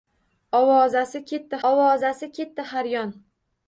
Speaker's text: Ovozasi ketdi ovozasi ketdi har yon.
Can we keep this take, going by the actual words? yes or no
yes